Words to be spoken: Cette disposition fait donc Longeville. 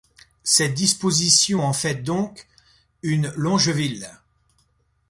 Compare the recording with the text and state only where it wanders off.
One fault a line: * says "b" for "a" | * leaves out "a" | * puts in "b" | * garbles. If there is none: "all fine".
* puts in "en"
* puts in "une"